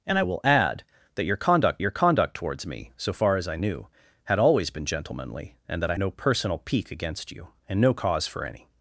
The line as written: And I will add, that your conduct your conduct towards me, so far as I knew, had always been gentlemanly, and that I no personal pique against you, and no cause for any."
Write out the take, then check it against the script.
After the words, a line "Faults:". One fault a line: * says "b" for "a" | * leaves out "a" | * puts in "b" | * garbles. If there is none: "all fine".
And I will add, that your conduct your conduct towards me, so far as I knew, had always been gentlemanly, and that I no personal pique against you, and no cause for any."
Faults:
all fine